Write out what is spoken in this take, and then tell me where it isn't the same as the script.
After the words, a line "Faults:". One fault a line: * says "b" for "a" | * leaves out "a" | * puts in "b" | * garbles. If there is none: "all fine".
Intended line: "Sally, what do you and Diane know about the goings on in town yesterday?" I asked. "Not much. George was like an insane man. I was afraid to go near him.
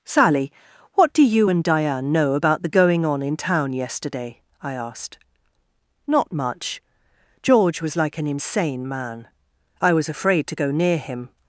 "Sally, what do you and Diane know about the going on in town yesterday?" I asked. "Not much. George was like an insane man. I was afraid to go near him.
Faults:
* says "going" for "goings"